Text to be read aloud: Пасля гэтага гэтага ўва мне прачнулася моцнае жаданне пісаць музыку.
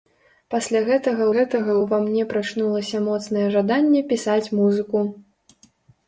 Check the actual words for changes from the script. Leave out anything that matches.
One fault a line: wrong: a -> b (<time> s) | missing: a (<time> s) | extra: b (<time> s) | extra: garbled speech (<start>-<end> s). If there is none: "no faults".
no faults